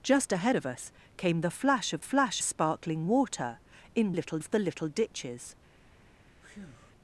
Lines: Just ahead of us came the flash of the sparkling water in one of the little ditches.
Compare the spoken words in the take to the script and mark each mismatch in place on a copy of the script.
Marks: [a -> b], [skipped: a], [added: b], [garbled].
Just ahead of us came the flash of [the -> flash] sparkling water in [one -> little] of the little ditches.